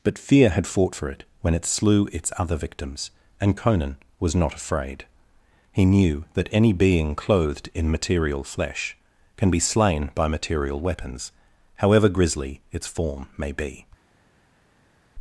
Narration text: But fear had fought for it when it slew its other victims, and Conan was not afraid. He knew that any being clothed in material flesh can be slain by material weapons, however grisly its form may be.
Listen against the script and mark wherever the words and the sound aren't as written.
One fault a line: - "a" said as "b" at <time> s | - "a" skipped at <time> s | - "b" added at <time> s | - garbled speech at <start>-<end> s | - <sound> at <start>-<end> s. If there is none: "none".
none